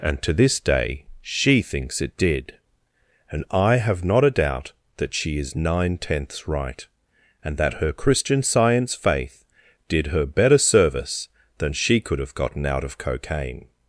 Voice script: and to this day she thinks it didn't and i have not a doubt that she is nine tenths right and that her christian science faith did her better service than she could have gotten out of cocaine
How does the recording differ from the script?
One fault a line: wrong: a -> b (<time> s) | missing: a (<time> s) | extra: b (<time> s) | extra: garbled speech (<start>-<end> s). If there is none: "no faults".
wrong: didn't -> did (2.2 s)